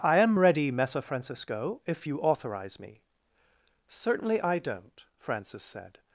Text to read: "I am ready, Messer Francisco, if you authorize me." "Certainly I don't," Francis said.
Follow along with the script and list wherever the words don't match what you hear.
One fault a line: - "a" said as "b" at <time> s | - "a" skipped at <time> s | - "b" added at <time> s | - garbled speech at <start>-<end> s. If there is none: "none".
none